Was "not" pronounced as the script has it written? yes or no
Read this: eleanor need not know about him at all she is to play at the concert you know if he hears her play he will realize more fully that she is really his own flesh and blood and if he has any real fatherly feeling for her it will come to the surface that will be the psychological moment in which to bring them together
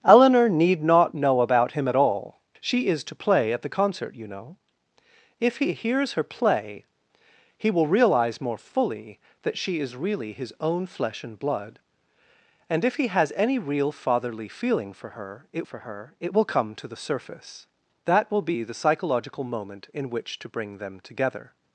yes